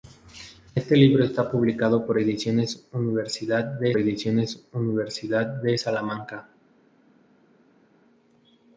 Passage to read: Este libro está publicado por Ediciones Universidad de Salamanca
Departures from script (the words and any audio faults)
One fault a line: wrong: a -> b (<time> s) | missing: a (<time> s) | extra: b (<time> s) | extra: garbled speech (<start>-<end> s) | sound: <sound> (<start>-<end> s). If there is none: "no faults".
extra: Ediciones Universidad de (4.0 s)